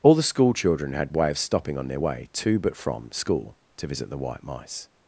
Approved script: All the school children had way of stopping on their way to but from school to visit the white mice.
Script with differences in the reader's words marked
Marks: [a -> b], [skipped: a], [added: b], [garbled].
All the school children had way of stopping on their way to but from school to visit the white mice.